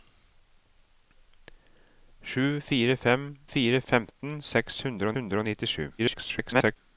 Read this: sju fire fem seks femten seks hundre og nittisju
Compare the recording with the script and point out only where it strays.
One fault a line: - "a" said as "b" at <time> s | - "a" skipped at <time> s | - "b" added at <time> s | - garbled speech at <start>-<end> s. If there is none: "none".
- "seks" said as "fire" at 3.5 s
- "hundre" added at 5.2 s
- garbled speech at 6.0-6.8 s